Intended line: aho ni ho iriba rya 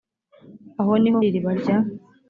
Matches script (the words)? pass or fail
pass